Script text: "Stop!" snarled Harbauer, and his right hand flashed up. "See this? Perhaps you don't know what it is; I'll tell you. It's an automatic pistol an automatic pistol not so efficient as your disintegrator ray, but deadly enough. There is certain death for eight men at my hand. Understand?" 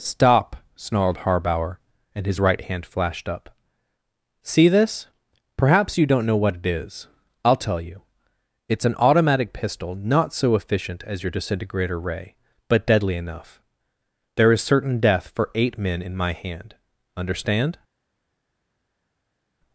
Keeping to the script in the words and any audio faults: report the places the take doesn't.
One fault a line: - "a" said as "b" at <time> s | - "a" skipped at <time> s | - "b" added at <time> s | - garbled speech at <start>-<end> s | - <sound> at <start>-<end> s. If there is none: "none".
- "an automatic pistol" skipped at 10.0 s
- "at" said as "in" at 16.0 s